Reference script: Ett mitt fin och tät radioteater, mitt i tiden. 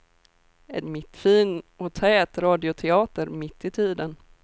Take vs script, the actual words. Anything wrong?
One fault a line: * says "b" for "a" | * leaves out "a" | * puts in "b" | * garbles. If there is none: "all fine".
all fine